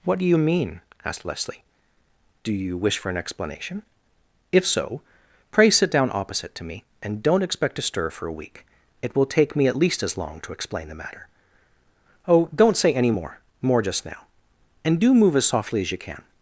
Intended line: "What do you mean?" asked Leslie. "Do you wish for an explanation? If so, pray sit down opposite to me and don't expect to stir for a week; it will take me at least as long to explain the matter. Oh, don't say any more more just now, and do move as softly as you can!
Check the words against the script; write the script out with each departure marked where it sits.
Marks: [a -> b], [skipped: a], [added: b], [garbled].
"What do you mean?" asked Leslie. "Do you wish for an explanation? If so, pray sit down opposite to me and don't expect to stir for a week; it will take me at least as long to explain the matter. Oh, don't say any more more just now, and do move as softly as you can!